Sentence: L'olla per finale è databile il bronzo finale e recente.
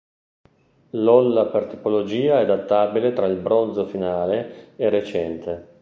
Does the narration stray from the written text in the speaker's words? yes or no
yes